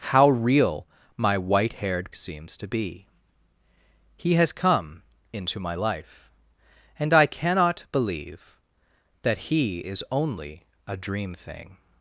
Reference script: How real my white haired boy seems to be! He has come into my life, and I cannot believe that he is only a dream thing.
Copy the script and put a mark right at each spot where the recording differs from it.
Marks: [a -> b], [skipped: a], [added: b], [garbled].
How real my white haired [skipped: boy] seems to be! He has come into my life, and I cannot believe that he is only a dream thing.